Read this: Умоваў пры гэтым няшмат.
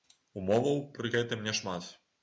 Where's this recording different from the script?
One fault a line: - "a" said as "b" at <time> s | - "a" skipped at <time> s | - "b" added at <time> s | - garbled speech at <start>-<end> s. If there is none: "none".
none